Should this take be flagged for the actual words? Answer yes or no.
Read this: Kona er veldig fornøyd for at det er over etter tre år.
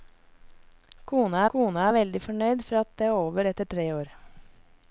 yes